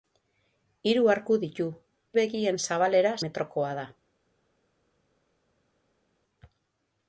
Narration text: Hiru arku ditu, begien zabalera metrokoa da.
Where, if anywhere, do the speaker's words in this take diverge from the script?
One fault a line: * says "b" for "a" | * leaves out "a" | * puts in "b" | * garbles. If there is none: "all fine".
all fine